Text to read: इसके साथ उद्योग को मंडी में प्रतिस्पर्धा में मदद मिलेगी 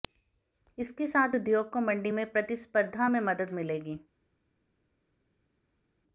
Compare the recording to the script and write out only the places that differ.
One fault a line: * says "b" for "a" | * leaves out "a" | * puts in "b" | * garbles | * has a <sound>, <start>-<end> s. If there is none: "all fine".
all fine